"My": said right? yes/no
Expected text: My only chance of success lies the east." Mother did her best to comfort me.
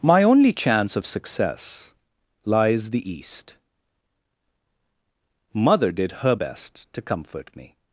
yes